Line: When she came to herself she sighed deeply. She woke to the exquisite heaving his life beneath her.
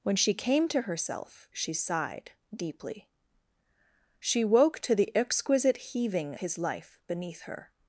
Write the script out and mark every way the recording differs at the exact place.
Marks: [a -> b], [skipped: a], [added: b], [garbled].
When she came to herself she sighed deeply. She woke to the exquisite heaving his life beneath her.